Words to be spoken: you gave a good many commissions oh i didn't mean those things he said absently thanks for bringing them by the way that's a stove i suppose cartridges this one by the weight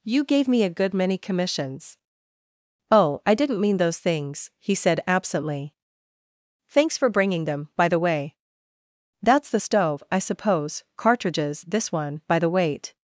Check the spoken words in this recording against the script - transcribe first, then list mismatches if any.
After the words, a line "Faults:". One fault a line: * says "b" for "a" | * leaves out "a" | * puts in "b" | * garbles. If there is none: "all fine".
you gave me a good many commissions oh i didn't mean those things he said absently thanks for bringing them by the way that's the stove i suppose cartridges this one by the weight
Faults:
* puts in "me"
* says "the" for "a"